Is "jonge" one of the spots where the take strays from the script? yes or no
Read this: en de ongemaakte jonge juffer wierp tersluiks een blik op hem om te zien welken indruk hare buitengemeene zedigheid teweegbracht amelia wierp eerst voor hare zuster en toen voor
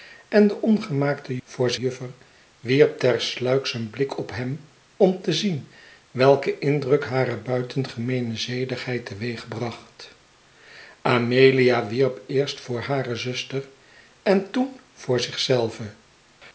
yes